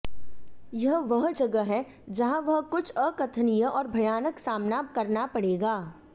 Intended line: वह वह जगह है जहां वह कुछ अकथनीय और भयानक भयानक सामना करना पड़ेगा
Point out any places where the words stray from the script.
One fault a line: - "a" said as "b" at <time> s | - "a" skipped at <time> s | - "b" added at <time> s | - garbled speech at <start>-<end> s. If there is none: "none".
- "वह" said as "यह" at 0.7 s
- "भयानक" skipped at 4.4 s